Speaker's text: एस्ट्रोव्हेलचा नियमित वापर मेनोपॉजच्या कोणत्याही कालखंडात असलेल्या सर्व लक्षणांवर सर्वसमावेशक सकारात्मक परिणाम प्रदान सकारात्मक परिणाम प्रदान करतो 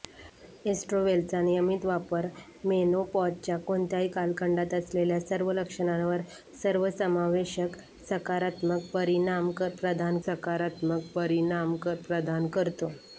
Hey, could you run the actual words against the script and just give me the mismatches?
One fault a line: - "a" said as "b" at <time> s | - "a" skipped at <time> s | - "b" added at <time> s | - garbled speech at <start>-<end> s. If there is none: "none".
none